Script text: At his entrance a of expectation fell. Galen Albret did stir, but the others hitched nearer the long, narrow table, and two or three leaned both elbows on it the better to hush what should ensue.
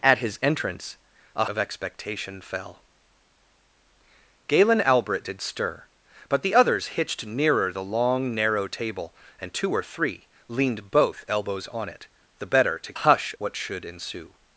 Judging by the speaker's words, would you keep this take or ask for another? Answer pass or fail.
pass